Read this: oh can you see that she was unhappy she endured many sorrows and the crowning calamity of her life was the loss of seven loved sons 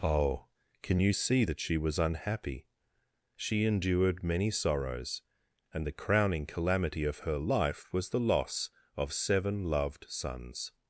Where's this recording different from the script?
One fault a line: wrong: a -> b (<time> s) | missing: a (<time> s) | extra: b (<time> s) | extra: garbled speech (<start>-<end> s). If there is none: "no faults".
no faults